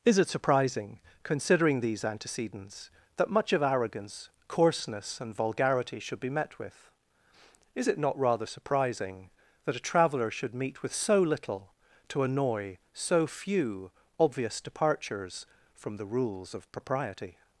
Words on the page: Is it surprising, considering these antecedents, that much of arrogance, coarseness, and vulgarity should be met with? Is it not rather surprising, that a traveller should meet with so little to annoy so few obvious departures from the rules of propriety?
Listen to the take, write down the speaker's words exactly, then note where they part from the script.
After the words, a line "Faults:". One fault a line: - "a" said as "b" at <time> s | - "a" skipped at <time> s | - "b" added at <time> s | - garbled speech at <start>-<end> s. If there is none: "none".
Is it surprising, considering these antecedents, that much of arrogance, coarseness, and vulgarity should be met with? Is it not rather surprising, that a traveller should meet with so little to annoy so few obvious departures from the rules of propriety?
Faults:
none